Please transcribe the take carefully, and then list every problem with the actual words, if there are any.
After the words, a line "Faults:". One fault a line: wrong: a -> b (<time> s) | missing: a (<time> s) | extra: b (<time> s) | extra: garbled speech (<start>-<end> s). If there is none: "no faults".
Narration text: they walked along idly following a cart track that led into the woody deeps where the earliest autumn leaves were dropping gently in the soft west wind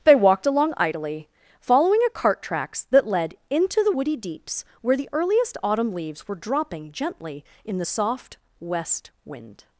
they walked along idly following a cart tracks that led into the woody deeps where the earliest autumn leaves were dropping gently in the soft west wind
Faults:
wrong: track -> tracks (2.4 s)